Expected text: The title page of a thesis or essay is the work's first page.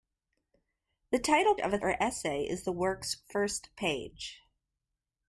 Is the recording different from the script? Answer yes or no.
yes